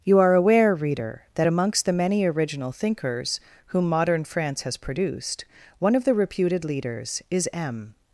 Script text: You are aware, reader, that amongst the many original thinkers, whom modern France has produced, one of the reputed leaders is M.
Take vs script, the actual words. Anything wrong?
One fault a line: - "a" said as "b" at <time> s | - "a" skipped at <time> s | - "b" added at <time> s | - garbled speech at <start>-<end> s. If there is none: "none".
none